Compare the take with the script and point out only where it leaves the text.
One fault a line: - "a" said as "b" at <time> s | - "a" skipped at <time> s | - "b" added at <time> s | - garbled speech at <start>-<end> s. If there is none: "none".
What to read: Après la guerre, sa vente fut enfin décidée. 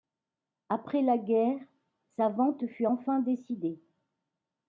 none